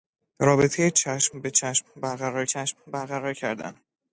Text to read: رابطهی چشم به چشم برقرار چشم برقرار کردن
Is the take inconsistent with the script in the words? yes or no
no